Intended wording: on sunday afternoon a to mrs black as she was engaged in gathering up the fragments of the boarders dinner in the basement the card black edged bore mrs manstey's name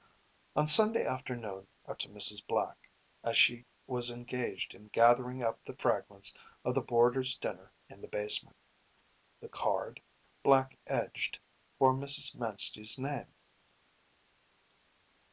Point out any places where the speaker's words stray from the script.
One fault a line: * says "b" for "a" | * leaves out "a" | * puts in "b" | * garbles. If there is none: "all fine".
all fine